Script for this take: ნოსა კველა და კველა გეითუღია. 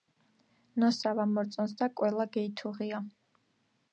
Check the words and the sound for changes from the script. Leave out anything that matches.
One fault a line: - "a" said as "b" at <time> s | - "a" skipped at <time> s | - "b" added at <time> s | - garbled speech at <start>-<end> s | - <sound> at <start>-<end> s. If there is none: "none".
- "კველა" said as "ვამორწონს" at 1.2 s